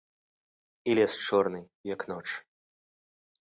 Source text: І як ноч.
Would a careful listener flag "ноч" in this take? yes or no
no